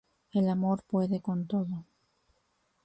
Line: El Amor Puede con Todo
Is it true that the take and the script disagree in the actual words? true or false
false